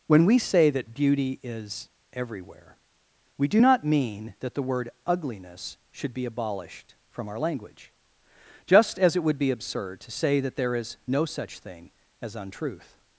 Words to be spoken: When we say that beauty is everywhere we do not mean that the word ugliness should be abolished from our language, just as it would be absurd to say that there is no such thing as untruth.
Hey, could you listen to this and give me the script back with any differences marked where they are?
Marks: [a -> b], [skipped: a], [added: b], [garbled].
When we say that beauty is everywhere we do not mean that the word ugliness should be abolished from our language, just as it would be absurd to say that there is no such thing as untruth.